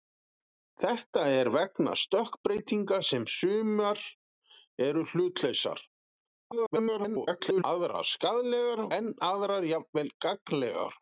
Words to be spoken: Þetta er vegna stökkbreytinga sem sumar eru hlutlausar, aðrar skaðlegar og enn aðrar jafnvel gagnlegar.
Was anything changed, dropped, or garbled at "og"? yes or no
yes